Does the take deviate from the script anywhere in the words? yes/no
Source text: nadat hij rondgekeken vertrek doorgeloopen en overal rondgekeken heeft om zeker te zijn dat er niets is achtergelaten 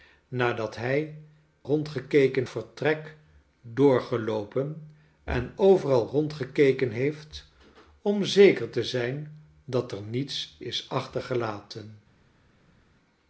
no